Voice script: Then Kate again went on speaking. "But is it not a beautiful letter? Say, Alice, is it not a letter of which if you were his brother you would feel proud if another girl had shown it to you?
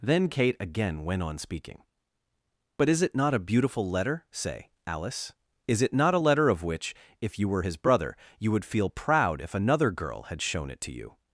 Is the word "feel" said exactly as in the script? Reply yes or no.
yes